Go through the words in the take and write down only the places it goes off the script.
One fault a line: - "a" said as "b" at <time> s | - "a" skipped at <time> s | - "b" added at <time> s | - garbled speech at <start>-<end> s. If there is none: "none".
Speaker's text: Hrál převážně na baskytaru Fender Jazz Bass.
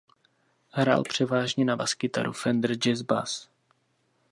none